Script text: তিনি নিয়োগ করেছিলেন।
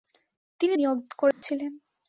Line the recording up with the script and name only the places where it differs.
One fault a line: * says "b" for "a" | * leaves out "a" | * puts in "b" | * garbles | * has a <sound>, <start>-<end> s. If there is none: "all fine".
* has a dropout, 1.3-1.4 s